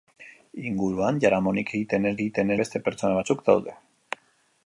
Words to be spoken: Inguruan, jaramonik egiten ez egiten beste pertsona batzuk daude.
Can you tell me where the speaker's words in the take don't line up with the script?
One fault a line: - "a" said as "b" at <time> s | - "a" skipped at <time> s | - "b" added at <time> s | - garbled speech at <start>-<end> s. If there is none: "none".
none